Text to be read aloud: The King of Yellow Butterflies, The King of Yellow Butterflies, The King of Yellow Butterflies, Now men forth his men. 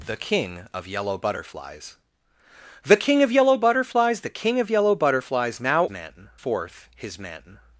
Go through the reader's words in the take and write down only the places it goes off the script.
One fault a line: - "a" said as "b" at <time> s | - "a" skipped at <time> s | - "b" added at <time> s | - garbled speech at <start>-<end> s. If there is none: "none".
none